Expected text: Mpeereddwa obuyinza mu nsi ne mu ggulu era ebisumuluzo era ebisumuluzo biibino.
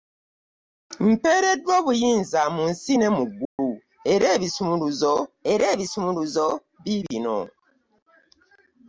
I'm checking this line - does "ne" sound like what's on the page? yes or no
yes